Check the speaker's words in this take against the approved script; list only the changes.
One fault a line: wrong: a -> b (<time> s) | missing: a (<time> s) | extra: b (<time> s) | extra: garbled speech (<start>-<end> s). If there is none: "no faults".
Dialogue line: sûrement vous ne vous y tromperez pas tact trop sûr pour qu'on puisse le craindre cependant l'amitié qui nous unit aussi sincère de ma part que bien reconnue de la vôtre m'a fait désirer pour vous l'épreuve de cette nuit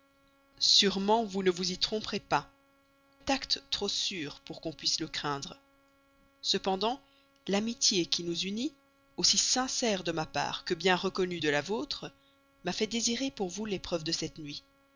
no faults